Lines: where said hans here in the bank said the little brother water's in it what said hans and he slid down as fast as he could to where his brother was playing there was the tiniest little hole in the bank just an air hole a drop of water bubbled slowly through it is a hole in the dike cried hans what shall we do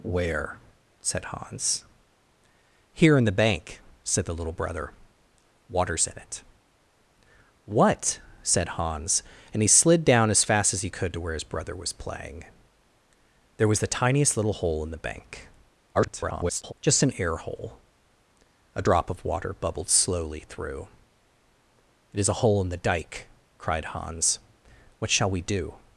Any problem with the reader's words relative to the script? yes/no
yes